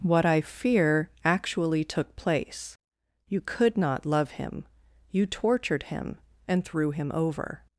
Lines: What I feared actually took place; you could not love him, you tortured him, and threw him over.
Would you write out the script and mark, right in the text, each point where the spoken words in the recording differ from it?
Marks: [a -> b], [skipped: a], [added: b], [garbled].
What I [feared -> fear] actually took place; you could not love him, you tortured him, and threw him over.